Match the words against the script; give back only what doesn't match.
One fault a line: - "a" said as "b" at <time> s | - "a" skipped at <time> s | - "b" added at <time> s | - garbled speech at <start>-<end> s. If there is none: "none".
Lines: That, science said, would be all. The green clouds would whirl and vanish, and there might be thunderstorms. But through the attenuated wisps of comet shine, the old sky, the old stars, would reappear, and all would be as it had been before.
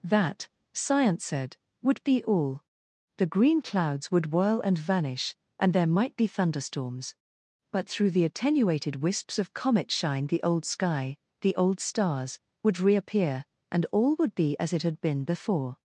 none